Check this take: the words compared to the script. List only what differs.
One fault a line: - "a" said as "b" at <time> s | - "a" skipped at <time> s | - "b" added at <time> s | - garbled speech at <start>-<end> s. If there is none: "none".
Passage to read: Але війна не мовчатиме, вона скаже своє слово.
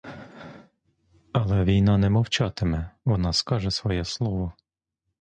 none